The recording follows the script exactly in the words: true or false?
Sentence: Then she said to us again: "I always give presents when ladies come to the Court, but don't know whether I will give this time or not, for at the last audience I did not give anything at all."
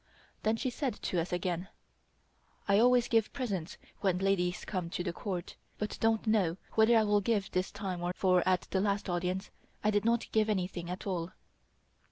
false